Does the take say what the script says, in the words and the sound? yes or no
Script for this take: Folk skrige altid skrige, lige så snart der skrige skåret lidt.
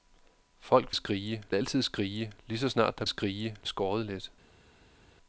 yes